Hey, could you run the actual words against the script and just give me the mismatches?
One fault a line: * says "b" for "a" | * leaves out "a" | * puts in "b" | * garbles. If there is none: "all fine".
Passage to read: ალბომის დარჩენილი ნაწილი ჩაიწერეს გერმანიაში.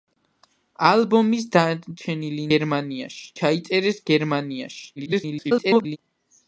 * says "გერმანიაში" for "ნაწილი"
* garbles